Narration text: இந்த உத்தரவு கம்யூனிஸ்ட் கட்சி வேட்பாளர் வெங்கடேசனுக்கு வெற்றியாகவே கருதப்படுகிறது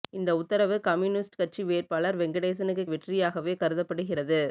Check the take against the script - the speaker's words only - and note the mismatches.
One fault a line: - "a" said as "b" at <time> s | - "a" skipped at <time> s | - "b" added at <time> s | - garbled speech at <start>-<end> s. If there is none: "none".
none